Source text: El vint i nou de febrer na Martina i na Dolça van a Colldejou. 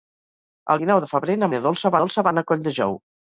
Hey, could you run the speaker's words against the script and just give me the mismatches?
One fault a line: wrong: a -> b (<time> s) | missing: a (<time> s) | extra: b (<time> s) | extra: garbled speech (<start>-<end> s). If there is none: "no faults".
missing: vint (0.8 s)
missing: Martina (1.5 s)
extra: Dolça (2.0 s)